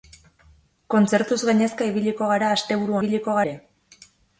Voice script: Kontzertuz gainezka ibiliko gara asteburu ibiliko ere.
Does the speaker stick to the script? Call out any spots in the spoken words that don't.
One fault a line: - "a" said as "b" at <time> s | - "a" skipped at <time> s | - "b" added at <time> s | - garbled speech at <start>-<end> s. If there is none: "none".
none